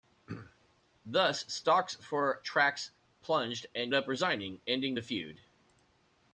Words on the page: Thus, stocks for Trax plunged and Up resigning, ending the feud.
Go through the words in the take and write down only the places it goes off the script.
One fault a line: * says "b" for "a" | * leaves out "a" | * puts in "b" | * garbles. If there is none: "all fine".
all fine